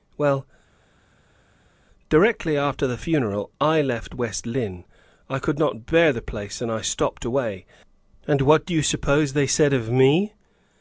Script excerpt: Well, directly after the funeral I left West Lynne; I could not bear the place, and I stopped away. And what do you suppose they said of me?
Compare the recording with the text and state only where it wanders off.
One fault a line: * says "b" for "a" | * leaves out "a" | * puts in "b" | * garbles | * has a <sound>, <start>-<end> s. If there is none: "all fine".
all fine